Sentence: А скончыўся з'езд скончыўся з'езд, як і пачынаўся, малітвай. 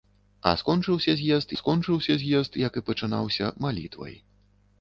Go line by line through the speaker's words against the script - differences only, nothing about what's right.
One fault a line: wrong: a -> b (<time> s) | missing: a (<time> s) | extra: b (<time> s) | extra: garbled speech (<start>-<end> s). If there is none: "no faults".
no faults